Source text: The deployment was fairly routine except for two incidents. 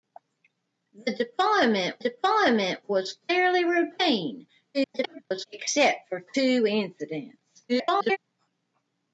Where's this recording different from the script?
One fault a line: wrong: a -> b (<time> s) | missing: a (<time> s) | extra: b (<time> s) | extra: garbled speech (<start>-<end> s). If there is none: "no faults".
extra: deployment (2.0 s)
extra: garbled speech (4.7-5.5 s)
extra: garbled speech (7.7-8.2 s)